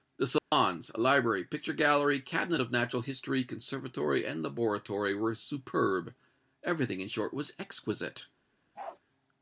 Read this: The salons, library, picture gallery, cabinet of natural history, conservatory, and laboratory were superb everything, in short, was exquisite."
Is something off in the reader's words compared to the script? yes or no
no